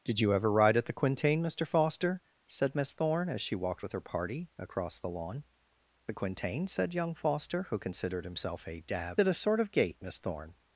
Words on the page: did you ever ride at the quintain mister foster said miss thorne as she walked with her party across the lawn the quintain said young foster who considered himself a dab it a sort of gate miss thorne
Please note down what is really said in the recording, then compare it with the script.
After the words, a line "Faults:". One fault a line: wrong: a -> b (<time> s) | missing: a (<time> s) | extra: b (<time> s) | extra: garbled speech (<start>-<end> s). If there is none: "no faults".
did you ever ride at the quintain mister foster said miss thorne as she walked with her party across the lawn the quintain said young foster who considered himself a dab it a sort of gate miss thorne
Faults:
no faults